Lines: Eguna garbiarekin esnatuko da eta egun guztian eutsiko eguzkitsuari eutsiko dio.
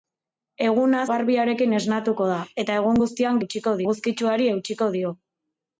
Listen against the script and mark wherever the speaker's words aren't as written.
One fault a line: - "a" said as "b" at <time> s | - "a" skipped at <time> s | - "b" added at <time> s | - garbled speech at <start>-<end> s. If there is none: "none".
none